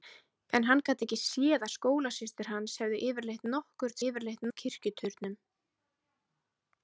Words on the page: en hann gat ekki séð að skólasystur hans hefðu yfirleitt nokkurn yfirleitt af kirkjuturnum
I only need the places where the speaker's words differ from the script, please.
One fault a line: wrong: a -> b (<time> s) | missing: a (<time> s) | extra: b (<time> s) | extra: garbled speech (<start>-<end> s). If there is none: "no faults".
no faults